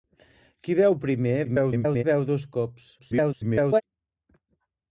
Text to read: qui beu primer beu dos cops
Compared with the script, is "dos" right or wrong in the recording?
right